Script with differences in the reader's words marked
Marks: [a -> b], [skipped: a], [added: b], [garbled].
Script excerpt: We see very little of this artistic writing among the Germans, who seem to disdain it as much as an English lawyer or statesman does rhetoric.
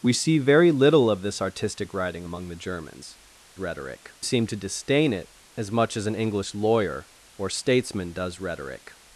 We see very little of this artistic writing among the Germans, [who -> rhetoric] seem to disdain it as much as an English lawyer or statesman does rhetoric.